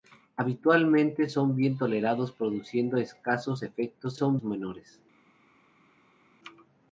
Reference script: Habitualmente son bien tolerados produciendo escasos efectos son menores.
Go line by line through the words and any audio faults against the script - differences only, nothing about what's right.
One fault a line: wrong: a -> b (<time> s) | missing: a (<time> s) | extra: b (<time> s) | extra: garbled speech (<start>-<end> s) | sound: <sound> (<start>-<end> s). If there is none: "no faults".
no faults